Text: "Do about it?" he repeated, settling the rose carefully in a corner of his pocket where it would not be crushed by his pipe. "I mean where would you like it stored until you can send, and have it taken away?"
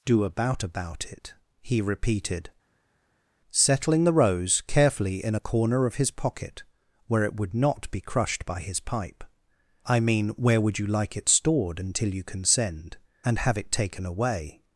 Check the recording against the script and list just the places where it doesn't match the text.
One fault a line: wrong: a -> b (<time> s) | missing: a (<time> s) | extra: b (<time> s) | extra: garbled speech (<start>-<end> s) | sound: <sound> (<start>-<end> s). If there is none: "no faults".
extra: about (0.6 s)